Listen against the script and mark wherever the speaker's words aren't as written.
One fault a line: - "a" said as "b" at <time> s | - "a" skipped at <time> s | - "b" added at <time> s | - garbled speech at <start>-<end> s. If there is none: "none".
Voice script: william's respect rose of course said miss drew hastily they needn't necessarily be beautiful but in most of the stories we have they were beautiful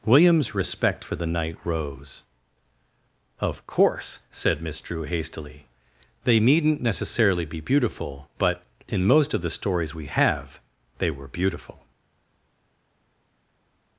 - "for the knight" added at 1.0 s